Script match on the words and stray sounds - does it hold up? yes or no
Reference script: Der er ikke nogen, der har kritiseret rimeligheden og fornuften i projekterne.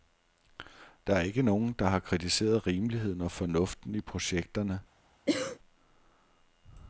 no